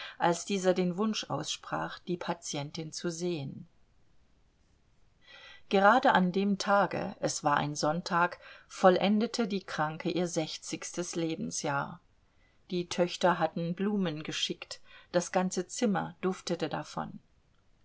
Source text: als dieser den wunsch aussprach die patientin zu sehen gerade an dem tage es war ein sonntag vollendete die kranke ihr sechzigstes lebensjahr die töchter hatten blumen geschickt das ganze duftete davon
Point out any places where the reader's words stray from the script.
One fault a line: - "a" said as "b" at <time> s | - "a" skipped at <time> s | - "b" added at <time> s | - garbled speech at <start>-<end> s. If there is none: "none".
- "zimmer" added at 15.7 s